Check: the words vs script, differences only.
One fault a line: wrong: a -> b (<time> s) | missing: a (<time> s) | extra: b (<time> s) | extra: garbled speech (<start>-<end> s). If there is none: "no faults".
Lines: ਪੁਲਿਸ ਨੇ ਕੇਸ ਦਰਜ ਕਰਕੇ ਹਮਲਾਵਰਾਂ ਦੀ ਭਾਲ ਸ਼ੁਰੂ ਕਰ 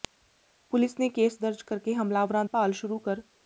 missing: ਦੀ (2.4 s)